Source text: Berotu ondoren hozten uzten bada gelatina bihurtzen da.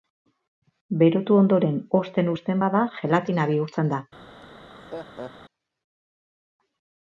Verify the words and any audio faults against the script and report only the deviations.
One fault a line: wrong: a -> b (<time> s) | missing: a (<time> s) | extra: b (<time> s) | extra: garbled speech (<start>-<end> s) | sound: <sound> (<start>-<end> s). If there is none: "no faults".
sound: laugh (4.4-5.3 s)